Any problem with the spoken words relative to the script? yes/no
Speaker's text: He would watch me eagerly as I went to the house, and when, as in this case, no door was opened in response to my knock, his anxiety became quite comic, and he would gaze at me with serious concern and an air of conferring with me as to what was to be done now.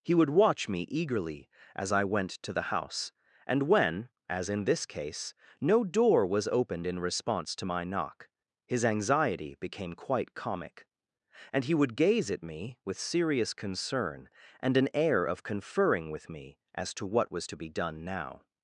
no